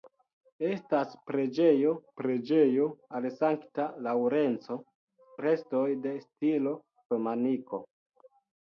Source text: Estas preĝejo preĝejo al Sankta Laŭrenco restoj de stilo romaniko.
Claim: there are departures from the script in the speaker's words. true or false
false